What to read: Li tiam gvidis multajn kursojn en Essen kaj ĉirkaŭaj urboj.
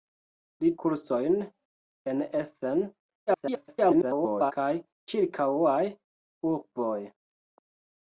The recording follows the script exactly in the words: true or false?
false